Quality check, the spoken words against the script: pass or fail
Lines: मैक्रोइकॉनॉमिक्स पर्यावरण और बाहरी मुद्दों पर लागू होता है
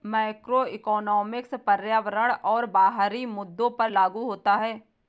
pass